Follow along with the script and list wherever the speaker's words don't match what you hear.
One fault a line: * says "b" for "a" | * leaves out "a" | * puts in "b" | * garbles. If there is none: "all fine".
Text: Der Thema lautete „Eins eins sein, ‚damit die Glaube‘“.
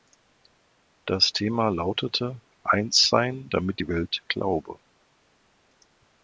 * says "Das" for "Der"
* leaves out "eins"
* puts in "Welt"